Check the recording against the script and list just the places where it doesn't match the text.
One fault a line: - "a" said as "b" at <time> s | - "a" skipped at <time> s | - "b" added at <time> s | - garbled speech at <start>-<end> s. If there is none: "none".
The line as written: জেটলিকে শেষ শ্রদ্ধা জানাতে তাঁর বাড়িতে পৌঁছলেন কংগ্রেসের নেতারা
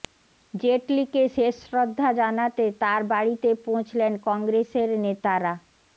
none